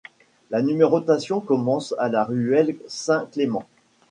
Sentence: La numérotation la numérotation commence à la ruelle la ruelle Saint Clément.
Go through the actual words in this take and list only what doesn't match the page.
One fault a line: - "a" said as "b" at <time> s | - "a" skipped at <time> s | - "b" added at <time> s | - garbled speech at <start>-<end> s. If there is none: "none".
- "la numérotation" skipped at 1.4 s
- "la ruelle" skipped at 2.8 s